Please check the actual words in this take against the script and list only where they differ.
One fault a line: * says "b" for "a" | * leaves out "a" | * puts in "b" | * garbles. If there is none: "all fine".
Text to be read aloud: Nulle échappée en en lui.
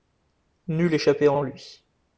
all fine